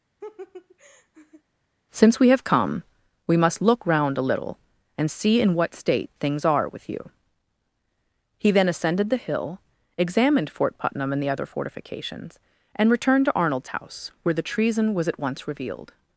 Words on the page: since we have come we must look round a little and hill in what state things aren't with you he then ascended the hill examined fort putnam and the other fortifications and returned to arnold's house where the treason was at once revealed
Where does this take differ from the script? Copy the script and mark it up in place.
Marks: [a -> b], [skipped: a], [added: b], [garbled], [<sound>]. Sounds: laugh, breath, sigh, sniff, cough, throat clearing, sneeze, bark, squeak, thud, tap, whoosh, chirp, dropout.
[laugh] since we have come we must look round a little and [hill -> see] in what state things [aren't -> are] with you he then ascended the hill examined fort putnam and the other fortifications and returned to arnold's house where the treason was at once revealed